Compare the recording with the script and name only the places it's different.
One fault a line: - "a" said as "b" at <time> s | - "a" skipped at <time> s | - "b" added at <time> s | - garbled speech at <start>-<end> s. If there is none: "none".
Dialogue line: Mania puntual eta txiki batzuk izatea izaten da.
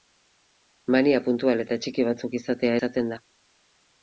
none